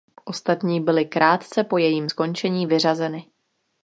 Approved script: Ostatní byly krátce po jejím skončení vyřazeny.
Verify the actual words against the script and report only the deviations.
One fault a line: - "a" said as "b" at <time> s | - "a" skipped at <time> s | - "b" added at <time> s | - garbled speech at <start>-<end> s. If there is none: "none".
none